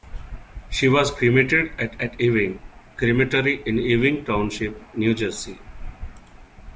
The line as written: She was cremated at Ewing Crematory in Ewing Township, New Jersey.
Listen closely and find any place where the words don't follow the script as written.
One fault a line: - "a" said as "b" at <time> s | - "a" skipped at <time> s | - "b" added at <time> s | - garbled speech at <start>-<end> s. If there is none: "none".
- "at" added at 2.0 s